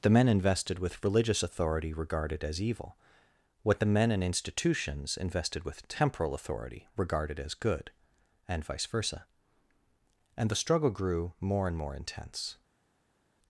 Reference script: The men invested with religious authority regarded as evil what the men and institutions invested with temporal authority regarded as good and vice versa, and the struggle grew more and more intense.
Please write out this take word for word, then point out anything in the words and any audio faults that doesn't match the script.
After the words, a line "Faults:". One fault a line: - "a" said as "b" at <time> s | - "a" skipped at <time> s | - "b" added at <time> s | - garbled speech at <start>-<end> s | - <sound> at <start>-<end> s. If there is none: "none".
The men invested with religious authority regarded as evil what the men and institutions invested with temporal authority regarded as good and vice versa, and the struggle grew more and more intense.
Faults:
none